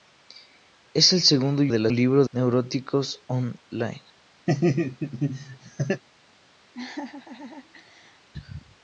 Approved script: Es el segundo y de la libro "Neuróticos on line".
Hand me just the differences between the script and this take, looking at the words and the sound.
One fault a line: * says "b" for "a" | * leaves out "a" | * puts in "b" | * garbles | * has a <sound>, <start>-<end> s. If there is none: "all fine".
* has a laugh, 4.5-6.0 s
* has a laugh, 6.7-8.3 s